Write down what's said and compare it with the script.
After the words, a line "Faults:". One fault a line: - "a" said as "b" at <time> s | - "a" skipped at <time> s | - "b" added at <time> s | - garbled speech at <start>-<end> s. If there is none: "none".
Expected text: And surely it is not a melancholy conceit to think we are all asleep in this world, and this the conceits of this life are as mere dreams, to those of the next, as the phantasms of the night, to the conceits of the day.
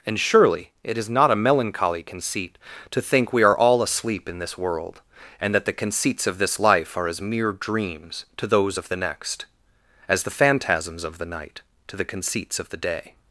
And surely it is not a melancholy conceit to think we are all asleep in this world, and that the conceits of this life are as mere dreams, to those of the next, as the phantasms of the night, to the conceits of the day.
Faults:
- "this" said as "that" at 5.5 s